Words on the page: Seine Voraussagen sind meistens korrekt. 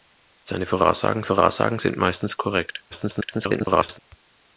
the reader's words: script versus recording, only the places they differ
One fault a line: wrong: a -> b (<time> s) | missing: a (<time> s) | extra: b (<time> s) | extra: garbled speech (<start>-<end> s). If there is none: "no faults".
extra: Voraussagen (1.2 s)
extra: garbled speech (2.9-4.0 s)